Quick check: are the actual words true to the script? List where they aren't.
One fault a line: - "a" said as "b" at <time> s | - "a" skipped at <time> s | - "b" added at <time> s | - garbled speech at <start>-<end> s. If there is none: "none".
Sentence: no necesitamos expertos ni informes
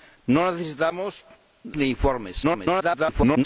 - "expertos" skipped at 1.2 s
- garbled speech at 2.4-3.4 s